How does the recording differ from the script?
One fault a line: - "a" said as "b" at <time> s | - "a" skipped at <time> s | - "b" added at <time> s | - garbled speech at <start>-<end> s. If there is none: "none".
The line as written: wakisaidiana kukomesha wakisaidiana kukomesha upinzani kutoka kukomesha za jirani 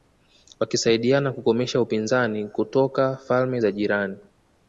- "wakisaidiana kukomesha" skipped at 1.8 s
- "kukomesha" said as "falme" at 3.2 s